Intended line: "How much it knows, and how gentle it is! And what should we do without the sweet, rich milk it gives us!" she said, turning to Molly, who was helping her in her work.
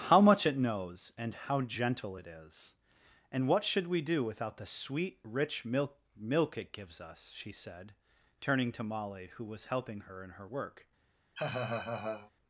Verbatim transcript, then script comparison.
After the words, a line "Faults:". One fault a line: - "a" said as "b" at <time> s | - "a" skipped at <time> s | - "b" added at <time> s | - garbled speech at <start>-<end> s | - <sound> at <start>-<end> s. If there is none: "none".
"How much it knows, and how gentle it is! And what should we do without the sweet, rich milk milk it gives us!" she said, turning to Molly, who was helping her in her work.
Faults:
- "milk" added at 6.2 s
- laugh at 11.3-12.3 s